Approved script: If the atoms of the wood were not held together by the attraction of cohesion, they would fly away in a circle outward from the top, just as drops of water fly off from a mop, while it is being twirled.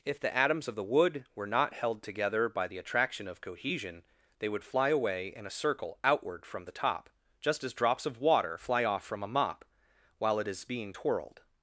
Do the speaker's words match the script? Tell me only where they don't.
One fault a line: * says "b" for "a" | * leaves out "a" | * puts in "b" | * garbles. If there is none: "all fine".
all fine